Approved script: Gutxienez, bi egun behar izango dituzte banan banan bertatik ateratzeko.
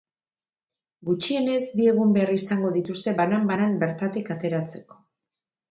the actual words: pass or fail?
pass